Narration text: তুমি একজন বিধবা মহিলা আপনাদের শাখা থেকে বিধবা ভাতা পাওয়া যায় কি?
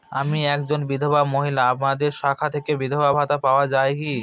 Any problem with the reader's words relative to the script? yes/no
yes